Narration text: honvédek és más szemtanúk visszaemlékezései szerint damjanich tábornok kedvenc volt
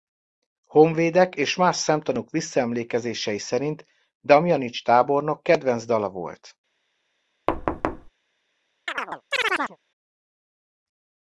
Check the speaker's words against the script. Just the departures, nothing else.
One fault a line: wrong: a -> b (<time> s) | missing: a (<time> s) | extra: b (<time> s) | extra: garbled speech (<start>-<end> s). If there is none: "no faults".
extra: dala (5.8 s)